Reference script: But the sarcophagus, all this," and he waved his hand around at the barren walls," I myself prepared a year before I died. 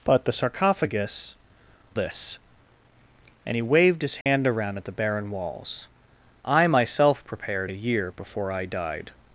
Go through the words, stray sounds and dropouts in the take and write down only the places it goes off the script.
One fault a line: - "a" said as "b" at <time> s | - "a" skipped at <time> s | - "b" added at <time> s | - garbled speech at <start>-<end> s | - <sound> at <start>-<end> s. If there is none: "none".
- "all" skipped at 1.4 s
- dropout at 4.2-4.3 s